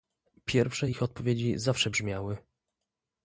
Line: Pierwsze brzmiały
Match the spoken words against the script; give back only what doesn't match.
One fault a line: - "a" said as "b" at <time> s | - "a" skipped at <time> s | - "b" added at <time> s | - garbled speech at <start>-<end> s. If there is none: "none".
- "ich odpowiedzi zawsze" added at 0.9 s